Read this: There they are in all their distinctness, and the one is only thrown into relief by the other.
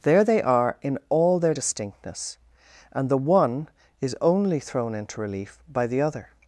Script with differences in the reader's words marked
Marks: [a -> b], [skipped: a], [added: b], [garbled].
There they are in all their distinctness, and the one is only thrown into relief by the other.